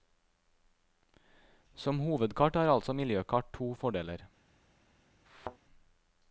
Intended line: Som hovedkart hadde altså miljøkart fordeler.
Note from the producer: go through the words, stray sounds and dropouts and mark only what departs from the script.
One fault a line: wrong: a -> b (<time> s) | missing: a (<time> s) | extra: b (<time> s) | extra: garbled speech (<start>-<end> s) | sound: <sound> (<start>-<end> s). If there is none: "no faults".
wrong: hadde -> har (2.5 s)
extra: to (3.5 s)
sound: thud (5.3-5.6 s)